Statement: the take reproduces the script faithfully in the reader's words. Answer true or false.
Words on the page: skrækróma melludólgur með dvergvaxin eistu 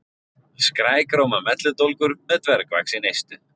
true